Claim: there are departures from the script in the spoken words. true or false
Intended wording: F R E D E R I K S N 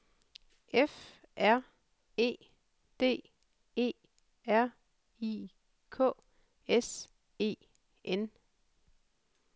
true